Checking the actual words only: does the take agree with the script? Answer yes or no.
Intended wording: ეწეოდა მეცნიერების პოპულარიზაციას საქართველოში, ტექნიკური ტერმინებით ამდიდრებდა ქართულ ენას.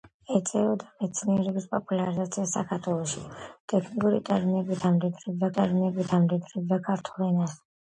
no